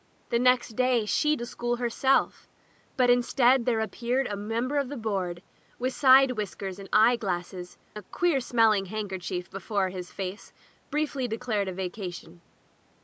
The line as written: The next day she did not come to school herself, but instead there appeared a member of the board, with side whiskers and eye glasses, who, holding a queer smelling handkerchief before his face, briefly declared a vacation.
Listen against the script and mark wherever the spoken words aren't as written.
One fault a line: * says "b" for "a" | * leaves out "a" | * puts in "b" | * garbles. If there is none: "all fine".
* leaves out "did not come"
* leaves out "who holding"